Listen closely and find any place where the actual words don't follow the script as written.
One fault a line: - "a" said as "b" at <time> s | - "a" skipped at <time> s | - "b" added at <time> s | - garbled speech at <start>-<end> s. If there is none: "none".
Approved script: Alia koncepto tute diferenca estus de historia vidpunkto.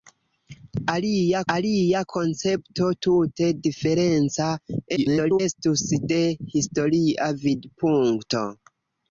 - "alia" added at 1.5 s
- garbled speech at 5.0-5.4 s